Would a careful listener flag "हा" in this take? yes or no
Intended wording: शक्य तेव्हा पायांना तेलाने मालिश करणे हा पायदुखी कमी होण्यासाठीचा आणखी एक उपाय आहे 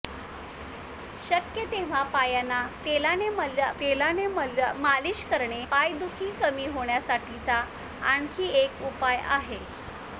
yes